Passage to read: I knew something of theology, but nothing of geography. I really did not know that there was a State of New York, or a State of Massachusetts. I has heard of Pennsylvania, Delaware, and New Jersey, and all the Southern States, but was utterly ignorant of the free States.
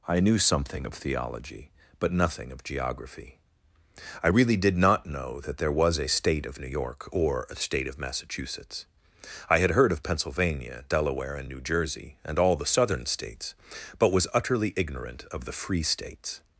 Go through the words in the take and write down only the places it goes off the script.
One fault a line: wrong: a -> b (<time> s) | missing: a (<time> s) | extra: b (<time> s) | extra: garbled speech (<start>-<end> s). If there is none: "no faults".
wrong: has -> had (9.6 s)